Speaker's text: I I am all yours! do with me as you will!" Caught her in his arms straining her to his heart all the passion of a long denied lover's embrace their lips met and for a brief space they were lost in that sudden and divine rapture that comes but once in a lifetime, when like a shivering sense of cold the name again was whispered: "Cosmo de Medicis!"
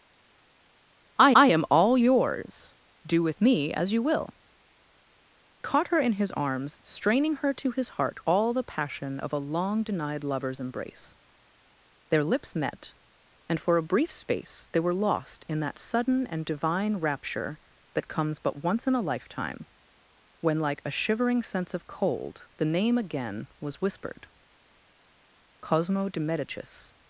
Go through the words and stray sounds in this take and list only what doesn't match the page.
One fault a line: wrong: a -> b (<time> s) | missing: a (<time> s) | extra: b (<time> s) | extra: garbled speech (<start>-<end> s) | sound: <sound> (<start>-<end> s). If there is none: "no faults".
no faults